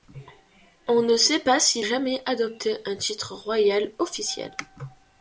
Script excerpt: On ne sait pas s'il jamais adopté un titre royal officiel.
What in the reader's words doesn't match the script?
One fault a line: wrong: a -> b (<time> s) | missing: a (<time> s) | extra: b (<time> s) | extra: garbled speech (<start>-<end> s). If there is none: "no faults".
no faults